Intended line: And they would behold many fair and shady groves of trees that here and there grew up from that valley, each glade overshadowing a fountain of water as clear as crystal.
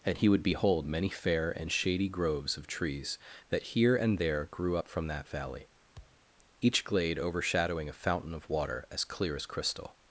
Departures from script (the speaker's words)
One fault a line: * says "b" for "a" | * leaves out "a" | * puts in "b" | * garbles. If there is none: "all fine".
* says "he" for "they"